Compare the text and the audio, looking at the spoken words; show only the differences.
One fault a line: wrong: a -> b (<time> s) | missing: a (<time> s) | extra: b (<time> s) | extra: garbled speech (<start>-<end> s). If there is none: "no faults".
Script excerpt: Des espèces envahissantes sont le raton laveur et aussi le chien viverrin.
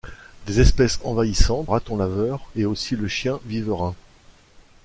missing: sont le (1.7 s)